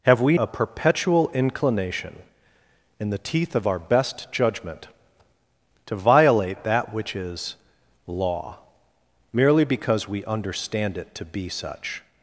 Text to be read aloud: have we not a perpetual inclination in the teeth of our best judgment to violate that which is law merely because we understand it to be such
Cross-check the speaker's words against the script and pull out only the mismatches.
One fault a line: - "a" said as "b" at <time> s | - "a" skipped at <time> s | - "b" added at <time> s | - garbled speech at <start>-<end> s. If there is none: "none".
- "not" skipped at 0.4 s